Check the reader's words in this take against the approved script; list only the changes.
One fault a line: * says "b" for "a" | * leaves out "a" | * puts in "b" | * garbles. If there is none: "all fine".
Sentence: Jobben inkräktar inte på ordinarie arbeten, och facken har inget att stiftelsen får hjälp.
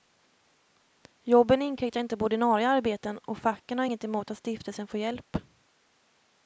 * puts in "emot"